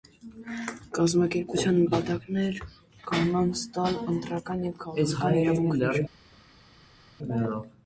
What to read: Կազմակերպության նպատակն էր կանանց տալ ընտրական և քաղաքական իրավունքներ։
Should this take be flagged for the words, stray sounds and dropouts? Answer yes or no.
no